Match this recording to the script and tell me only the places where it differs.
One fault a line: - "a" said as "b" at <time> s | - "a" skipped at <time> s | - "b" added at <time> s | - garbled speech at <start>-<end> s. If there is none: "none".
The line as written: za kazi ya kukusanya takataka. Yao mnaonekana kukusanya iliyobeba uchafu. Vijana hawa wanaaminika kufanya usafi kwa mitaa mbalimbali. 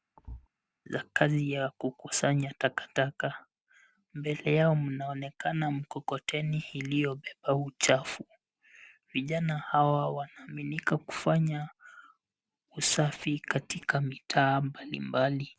- "Mbele" added at 4.1 s
- "kukusanya" said as "mkokoteni" at 5.7 s
- "kwa" said as "katika" at 13.4 s